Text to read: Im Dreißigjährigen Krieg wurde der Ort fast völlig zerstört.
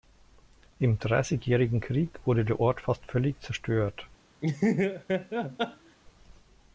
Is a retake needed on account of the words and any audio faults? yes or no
yes